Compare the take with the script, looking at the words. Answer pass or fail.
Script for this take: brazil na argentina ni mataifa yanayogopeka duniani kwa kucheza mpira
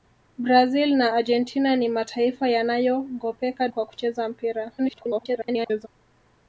fail